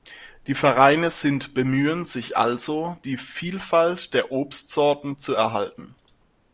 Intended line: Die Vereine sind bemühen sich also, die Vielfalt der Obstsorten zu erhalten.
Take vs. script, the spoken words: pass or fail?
pass